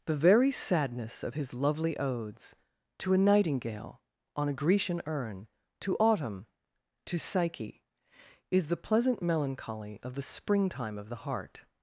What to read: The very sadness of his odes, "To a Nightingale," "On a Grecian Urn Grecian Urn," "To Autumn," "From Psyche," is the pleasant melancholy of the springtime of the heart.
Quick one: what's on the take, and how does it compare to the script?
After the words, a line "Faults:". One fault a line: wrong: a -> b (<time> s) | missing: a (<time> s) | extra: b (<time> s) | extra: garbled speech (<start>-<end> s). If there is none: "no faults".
The very sadness of his lovely odes, "To a Nightingale," "On a Grecian Urn," "To Autumn," "To Psyche," is the pleasant melancholy of the springtime of the heart.
Faults:
extra: lovely (1.5 s)
missing: Grecian Urn (5.5 s)
wrong: From -> To (7.0 s)